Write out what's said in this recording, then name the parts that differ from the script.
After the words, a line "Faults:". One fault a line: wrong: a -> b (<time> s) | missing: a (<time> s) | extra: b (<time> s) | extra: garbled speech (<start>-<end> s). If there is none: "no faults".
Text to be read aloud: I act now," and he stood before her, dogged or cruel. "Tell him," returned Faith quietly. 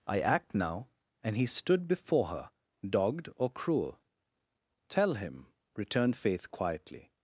I act now," and he stood before her, dogged or cruel. "Tell him," returned Faith quietly.
Faults:
no faults